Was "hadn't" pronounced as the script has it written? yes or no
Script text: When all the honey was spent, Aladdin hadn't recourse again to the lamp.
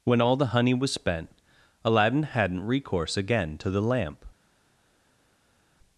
yes